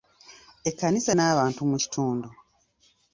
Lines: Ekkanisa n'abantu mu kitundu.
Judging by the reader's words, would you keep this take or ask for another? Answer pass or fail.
pass